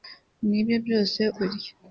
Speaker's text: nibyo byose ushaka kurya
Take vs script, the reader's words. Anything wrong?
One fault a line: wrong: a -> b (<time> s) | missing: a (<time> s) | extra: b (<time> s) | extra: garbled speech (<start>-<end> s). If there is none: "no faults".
missing: ushaka (1.2 s)